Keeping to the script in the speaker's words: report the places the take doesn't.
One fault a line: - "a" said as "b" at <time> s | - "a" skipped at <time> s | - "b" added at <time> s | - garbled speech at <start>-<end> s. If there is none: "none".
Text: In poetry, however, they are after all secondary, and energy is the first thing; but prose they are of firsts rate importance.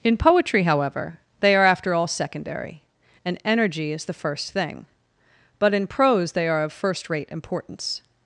- "in" added at 5.7 s
- "firsts" said as "first" at 6.7 s